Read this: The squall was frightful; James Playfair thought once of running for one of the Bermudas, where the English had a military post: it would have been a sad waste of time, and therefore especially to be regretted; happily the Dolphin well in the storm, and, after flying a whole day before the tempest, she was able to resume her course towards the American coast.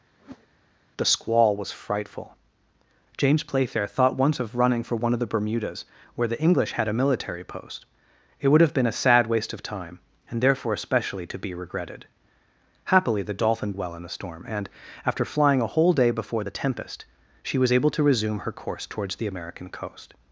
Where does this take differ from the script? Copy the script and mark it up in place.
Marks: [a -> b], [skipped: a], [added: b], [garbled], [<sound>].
[whoosh] The squall was frightful; James Playfair thought once of running for one of the Bermudas, where the English had a military post: it would have been a sad waste of time, and therefore especially to be regretted; happily the Dolphin well in the storm, and, after flying a whole day before the tempest, she was able to resume her course towards the American coast.